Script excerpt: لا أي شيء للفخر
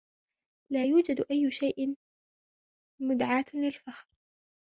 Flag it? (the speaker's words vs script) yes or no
yes